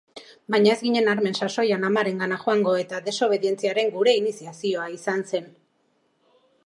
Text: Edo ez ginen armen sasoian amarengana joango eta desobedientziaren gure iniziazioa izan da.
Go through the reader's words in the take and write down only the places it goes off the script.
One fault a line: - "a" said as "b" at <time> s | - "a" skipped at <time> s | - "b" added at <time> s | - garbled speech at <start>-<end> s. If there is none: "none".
- "Edo" said as "Baina" at 0.5 s
- "da" said as "zen" at 5.3 s